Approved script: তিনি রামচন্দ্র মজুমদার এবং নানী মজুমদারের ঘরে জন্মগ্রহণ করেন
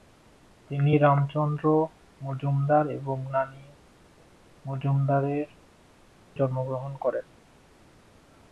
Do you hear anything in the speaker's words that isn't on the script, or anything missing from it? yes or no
yes